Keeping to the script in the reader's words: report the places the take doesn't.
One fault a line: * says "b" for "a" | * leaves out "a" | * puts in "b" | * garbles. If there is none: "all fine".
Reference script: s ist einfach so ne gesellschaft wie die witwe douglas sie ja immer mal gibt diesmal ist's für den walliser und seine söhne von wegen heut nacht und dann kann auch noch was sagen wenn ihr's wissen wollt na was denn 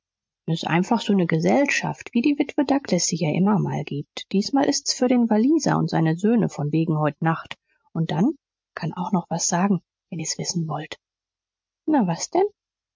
all fine